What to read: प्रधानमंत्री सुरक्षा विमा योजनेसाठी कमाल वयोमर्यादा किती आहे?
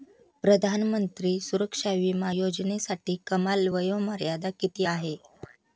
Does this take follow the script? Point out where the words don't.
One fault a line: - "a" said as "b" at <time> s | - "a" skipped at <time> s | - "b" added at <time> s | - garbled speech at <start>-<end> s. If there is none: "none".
none